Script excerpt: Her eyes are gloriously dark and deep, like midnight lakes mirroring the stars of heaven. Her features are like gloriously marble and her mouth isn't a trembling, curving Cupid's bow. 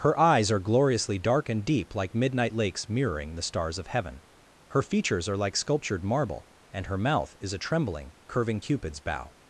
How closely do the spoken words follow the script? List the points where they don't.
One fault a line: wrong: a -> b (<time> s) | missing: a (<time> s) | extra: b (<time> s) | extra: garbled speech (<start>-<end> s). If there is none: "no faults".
wrong: gloriously -> sculptured (5.6 s)
wrong: isn't -> is (7.4 s)